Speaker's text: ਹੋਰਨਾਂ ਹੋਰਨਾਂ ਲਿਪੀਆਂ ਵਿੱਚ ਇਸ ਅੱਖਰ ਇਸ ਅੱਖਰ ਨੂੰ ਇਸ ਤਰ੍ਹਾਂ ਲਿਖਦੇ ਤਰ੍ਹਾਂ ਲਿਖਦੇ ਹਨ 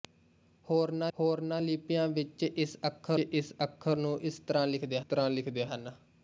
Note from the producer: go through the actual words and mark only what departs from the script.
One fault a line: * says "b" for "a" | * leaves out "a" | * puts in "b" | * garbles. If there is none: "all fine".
all fine